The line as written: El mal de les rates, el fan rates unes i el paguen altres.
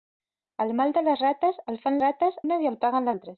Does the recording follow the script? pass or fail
pass